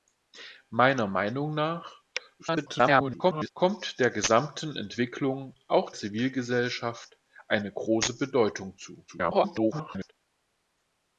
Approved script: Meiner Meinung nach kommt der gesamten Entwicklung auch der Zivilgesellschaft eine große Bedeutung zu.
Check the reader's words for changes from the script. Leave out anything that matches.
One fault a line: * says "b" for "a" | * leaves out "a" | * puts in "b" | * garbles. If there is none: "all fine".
* garbles
* leaves out "der"
* garbles